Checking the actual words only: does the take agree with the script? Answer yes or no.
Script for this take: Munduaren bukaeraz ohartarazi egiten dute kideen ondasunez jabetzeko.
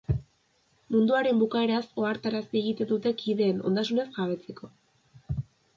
yes